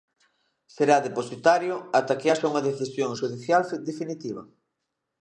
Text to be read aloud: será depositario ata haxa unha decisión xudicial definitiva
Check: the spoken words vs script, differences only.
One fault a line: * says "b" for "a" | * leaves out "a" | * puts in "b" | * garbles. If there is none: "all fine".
* puts in "que"